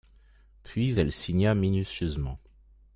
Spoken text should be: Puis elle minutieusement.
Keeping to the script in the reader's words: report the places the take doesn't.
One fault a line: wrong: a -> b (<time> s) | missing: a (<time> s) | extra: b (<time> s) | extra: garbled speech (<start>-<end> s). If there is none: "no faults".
extra: signa (1.1 s)